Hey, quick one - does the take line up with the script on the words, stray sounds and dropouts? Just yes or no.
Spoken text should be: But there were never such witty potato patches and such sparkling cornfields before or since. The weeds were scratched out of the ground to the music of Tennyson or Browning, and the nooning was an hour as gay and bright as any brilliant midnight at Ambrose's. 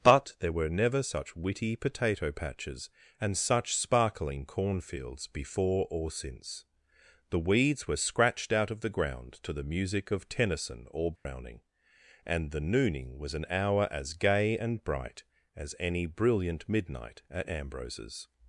no